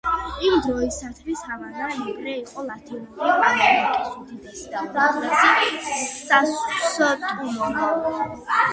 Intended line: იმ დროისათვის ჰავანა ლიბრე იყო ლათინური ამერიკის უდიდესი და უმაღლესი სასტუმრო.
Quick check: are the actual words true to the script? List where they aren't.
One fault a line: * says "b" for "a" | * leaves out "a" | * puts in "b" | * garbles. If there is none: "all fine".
all fine